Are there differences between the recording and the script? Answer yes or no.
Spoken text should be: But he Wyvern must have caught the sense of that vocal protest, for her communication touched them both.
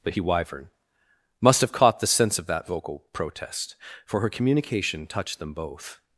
no